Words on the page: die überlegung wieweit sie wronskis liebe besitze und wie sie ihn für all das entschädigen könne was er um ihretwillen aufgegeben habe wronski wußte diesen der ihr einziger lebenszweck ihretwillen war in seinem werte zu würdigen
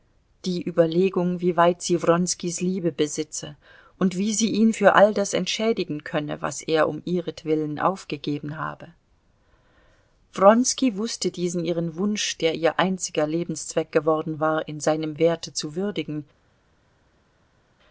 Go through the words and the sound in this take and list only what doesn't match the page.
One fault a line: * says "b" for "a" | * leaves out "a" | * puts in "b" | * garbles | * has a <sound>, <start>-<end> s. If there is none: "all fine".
* puts in "ihren wunsch"
* says "geworden" for "ihretwillen"